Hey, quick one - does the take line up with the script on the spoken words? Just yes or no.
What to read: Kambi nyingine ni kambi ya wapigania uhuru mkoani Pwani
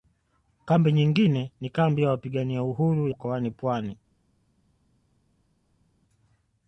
yes